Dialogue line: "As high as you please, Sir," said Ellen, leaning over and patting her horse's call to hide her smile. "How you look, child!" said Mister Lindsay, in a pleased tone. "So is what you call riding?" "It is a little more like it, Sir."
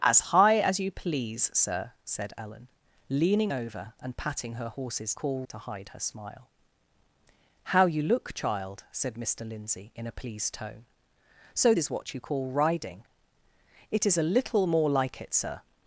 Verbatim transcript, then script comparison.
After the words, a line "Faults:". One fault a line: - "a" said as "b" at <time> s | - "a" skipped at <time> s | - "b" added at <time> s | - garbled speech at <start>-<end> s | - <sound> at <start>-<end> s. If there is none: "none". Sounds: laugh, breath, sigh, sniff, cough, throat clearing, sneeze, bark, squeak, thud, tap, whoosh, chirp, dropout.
"As high as you please, Sir," said Ellen, leaning over and patting her horse's call to hide her smile. "How you look, child!" said Mister Lindsay, in a pleased tone. "So is what you call riding?" "It is a little more like it, Sir."
Faults:
none